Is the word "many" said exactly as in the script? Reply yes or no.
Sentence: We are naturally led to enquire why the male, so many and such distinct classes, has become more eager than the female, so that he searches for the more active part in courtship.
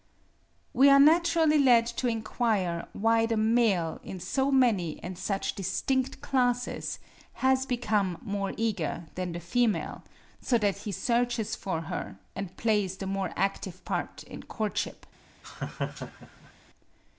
yes